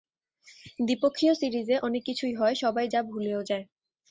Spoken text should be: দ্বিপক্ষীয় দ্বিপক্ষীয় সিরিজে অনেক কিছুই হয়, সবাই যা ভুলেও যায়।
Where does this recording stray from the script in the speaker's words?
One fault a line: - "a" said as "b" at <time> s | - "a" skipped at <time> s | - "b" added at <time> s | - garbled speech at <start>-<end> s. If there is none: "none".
- "দ্বিপক্ষীয়" skipped at 1.3 s